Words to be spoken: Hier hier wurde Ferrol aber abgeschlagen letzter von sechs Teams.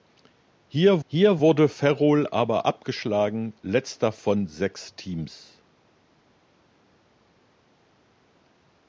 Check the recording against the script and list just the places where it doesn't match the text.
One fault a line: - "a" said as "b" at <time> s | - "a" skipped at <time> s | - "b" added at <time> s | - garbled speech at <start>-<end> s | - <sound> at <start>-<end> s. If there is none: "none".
none